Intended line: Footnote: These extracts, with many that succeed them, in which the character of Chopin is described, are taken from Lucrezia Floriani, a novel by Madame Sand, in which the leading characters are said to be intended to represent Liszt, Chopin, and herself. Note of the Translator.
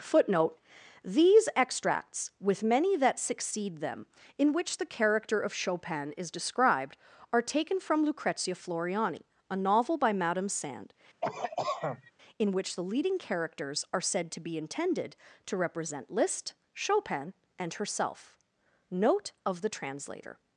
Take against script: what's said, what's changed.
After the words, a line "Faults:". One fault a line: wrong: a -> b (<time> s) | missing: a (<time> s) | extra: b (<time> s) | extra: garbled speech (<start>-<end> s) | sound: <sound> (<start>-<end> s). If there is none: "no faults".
Footnote: These extracts, with many that succeed them, in which the character of Chopin is described, are taken from Lucrezia Floriani, a novel by Madame Sand, in which the leading characters are said to be intended to represent Liszt, Chopin, and herself. Note of the Translator.
Faults:
sound: cough (11.2-12.1 s)